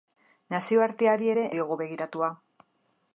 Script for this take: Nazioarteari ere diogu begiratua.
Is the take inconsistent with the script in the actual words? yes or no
no